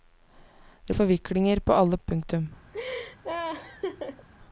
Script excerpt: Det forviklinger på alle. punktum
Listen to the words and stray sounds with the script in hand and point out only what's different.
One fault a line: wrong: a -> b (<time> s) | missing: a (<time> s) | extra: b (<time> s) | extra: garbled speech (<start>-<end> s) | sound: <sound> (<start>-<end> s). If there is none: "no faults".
sound: laugh (2.7-4.3 s)